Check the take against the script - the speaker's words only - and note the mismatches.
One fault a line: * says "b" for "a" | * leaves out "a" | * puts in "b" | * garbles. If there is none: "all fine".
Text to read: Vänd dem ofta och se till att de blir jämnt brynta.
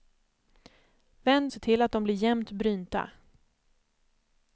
* leaves out "dem ofta och"